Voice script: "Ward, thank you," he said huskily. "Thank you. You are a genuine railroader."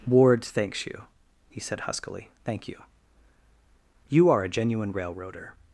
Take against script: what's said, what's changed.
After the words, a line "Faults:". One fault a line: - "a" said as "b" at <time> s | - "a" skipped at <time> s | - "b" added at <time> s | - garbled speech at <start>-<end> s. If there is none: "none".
"Ward, thanks you," he said huskily. "Thank you. You are a genuine railroader."
Faults:
- "thank" said as "thanks" at 0.4 s